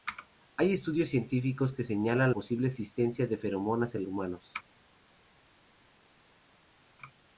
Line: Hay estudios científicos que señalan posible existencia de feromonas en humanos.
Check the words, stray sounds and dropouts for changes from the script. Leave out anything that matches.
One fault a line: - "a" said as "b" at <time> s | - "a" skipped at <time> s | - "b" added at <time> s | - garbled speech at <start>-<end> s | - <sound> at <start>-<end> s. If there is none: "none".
none